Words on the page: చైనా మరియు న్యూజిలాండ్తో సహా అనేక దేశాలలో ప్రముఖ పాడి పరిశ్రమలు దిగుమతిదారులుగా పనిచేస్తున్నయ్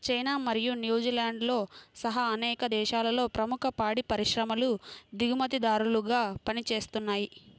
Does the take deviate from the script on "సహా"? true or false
false